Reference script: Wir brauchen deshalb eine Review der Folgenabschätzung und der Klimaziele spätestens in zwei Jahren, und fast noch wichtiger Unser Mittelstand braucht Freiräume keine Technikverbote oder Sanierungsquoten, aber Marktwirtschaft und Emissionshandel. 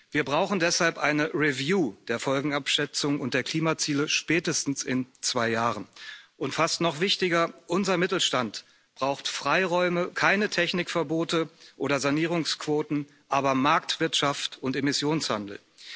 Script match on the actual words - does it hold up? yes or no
yes